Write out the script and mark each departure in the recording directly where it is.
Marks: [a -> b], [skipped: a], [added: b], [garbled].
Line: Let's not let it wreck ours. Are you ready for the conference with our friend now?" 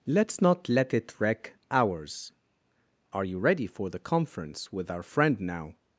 Let's not let it wreck ours. Are you ready for the conference with our friend now?"